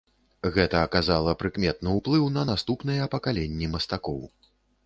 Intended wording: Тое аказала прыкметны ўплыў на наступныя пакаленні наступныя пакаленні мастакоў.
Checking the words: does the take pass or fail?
fail